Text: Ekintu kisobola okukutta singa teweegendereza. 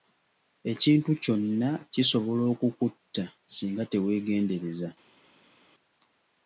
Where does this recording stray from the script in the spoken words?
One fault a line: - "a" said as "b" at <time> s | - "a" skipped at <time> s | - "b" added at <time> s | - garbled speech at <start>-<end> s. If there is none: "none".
- "kyonna" added at 1.2 s